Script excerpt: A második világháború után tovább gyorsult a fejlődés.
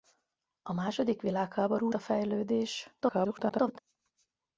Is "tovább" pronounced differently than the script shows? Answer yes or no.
yes